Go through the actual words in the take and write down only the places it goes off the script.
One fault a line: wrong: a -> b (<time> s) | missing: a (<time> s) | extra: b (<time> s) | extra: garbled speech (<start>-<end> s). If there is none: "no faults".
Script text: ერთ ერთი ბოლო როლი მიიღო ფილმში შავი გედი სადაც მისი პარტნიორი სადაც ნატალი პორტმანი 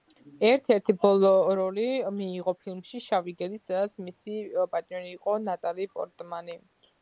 wrong: სადაც -> იყო (5.2 s)